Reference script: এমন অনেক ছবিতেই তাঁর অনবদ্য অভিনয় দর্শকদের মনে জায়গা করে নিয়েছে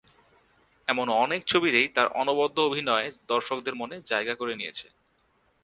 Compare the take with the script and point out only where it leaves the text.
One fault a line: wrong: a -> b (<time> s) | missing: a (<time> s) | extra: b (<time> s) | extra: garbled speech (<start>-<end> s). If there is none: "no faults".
no faults